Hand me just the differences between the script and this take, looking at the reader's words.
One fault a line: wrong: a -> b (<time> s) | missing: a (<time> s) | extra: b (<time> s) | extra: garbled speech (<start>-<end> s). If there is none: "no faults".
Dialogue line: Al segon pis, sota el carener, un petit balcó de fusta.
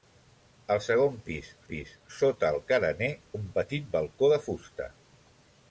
extra: pis (1.7 s)